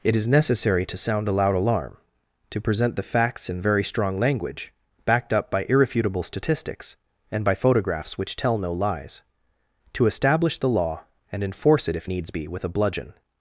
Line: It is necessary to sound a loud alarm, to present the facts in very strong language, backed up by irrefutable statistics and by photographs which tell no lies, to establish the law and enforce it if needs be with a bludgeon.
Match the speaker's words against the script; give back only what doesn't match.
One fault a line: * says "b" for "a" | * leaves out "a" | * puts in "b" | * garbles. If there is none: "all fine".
all fine